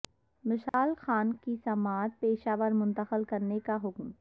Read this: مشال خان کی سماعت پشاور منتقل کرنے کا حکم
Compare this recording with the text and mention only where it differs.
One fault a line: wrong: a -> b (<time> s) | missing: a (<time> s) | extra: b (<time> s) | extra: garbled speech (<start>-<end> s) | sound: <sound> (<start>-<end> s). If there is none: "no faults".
sound: dropout (0.7-0.7 s)